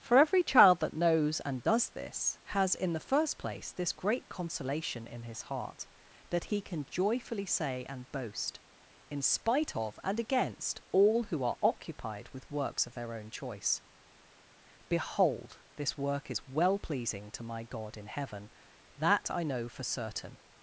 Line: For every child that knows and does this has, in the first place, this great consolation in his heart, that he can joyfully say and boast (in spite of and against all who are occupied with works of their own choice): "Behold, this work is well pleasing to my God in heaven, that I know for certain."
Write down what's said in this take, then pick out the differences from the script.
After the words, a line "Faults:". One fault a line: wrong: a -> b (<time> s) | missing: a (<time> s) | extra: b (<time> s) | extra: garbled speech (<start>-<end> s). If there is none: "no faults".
For every child that knows and does this has, in the first place, this great consolation in his heart, that he can joyfully say and boast (in spite of and against all who are occupied with works of their own choice): "Behold, this work is well pleasing to my God in heaven, that I know for certain."
Faults:
no faults